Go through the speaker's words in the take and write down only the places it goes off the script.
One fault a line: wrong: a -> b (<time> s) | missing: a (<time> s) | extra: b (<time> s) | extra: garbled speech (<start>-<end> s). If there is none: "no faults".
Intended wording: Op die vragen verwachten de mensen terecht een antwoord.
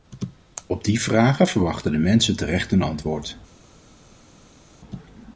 no faults